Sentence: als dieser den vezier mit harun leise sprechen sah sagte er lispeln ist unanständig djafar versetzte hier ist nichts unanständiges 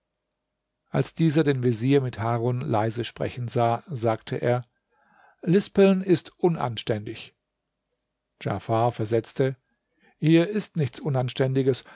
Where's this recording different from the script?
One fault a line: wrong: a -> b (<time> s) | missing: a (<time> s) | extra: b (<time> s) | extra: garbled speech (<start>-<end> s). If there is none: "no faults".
no faults